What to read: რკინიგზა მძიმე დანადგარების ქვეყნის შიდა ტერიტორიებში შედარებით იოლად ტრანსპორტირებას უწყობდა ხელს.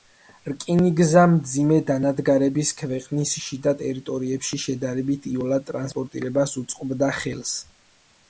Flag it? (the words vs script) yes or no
no